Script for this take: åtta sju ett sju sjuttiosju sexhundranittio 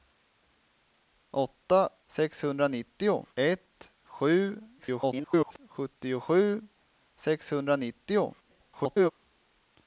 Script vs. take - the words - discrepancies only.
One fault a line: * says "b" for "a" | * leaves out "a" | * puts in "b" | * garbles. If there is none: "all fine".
* says "sexhundranittio" for "sju"
* garbles
* garbles